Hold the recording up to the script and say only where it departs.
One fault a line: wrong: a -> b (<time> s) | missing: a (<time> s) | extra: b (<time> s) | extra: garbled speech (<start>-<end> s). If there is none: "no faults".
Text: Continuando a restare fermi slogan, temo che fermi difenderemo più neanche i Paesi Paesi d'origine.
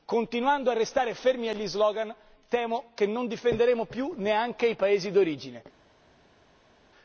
extra: agli (1.5 s)
wrong: fermi -> non (3.0 s)
missing: Paesi (5.1 s)